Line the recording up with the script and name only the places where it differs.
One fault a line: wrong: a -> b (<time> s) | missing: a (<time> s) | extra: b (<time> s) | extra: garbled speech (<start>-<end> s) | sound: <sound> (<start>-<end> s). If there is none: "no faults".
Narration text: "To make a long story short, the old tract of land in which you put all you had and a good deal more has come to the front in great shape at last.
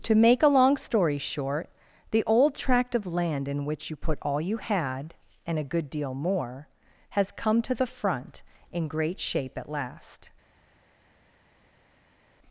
no faults